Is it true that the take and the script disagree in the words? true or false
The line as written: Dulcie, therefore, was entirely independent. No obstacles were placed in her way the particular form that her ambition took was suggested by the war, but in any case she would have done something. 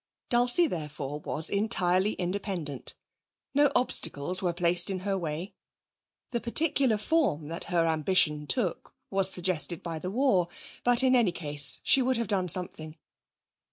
false